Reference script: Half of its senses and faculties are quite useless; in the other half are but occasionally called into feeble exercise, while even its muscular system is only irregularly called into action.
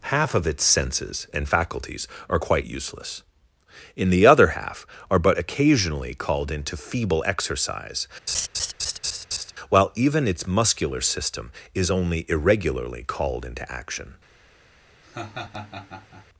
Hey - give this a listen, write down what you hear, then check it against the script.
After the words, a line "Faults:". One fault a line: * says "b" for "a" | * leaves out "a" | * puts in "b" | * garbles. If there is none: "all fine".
Half of its senses and faculties are quite useless; in the other half are but occasionally called into feeble exercise, while even its muscular system is only irregularly called into action.
Faults:
all fine